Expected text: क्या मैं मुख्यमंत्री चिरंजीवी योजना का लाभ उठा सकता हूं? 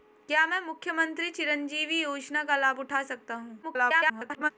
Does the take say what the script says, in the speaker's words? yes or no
no